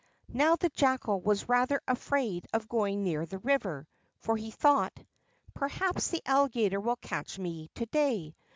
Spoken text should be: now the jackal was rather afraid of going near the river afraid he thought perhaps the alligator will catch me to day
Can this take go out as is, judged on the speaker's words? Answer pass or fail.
fail